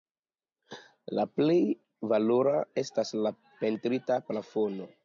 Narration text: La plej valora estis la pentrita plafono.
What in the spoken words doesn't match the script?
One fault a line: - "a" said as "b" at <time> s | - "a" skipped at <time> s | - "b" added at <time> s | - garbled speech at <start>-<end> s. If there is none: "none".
- "estis" said as "estas" at 2.9 s